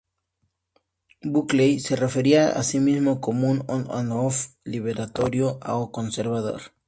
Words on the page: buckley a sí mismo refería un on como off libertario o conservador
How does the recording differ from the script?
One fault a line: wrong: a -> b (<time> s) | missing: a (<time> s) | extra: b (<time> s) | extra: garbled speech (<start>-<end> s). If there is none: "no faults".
extra: se refería (1.8 s)
wrong: refería -> como (3.2 s)
wrong: como -> and (3.9 s)